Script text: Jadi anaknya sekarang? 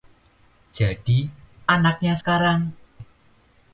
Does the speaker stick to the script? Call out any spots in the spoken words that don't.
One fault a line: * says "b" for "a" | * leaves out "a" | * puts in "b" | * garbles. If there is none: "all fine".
all fine